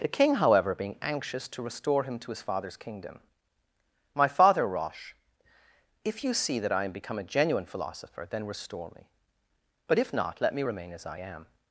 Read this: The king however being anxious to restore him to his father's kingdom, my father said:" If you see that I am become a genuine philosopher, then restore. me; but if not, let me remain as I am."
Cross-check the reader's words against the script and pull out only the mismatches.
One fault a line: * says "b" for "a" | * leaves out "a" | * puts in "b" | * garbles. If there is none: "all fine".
* says "rosh" for "said"